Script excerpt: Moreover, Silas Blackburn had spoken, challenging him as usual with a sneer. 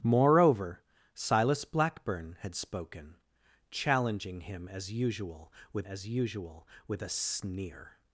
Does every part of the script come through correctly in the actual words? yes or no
no